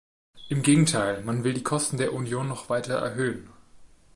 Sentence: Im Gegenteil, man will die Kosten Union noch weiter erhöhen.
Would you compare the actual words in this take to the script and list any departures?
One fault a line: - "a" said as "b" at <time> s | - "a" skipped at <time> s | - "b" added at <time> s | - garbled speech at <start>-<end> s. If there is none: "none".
- "der" added at 2.0 s